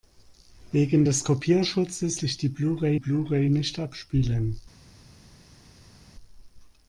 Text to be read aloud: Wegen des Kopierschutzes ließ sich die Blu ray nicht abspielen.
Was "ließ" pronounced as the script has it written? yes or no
no